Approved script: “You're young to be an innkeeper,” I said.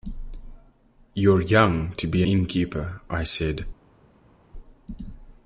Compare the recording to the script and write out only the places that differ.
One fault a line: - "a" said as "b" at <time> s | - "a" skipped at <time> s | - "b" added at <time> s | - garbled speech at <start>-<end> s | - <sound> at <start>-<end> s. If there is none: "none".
- "an" skipped at 2.2 s